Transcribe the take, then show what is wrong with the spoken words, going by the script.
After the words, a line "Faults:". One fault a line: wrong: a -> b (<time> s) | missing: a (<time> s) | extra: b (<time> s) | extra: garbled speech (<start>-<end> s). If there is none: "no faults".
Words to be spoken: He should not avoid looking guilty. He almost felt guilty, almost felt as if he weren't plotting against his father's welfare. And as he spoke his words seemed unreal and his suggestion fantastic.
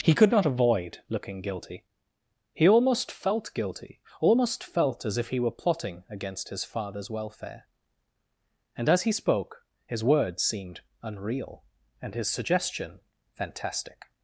He could not avoid looking guilty. He almost felt guilty, almost felt as if he were plotting against his father's welfare. And as he spoke his words seemed unreal and his suggestion fantastic.
Faults:
wrong: should -> could (0.1 s)
wrong: weren't -> were (5.4 s)